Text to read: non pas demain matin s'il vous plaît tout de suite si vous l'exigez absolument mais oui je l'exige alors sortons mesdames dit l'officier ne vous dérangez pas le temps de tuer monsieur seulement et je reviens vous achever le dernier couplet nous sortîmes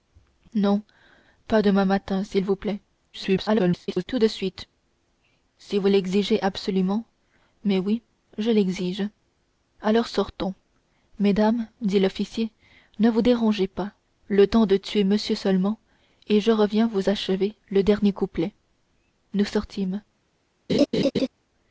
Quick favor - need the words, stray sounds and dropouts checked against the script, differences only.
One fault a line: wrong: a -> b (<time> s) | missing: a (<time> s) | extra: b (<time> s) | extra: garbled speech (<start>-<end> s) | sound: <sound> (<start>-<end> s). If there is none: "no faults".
extra: garbled speech (3.1-4.0 s)
sound: laugh (20.7-21.3 s)